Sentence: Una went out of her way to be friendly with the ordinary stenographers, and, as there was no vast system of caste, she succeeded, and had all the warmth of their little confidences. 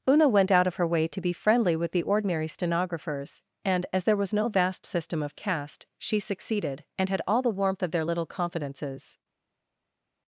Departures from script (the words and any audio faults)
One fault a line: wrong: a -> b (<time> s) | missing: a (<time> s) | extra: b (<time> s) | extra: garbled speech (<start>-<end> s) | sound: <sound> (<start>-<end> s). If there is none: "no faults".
no faults